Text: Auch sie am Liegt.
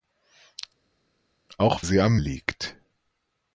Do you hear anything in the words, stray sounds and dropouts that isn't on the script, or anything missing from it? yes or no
no